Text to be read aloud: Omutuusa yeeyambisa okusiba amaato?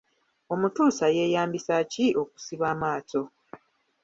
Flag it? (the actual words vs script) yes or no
yes